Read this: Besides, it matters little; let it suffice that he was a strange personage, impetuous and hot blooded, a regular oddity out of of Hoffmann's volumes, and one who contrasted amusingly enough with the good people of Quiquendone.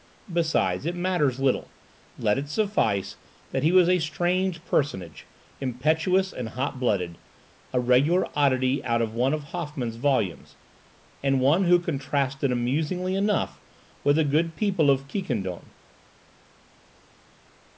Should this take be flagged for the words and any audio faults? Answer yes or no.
yes